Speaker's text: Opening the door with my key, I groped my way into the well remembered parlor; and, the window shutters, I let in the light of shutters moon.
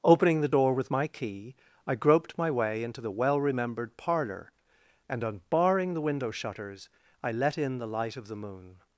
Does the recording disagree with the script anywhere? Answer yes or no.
yes